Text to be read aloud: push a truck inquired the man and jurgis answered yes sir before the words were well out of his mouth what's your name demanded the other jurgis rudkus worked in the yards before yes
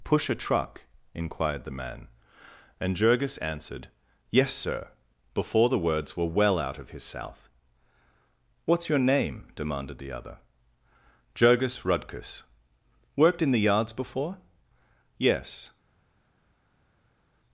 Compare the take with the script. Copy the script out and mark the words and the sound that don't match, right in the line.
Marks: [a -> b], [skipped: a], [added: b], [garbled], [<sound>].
push a truck inquired the man and jurgis answered yes sir before the words were well out of his [mouth -> south] what's your name demanded the other jurgis rudkus worked in the yards before yes